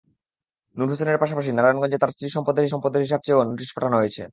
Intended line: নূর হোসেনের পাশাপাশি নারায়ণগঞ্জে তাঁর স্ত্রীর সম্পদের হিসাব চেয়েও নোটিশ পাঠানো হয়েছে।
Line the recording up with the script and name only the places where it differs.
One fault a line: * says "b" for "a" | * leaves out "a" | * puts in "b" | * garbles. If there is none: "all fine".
* puts in "সম্পদের"